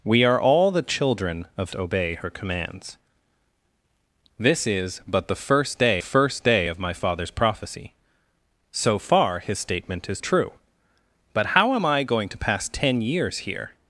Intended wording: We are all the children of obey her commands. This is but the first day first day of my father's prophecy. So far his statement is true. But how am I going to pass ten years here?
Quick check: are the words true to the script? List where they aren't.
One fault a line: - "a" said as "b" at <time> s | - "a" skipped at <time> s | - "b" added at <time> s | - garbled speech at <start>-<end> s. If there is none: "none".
none